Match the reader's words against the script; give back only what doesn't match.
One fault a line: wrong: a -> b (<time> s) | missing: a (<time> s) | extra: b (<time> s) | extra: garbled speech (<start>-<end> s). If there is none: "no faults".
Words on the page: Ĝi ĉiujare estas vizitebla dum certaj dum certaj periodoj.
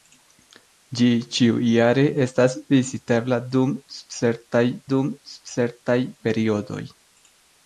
no faults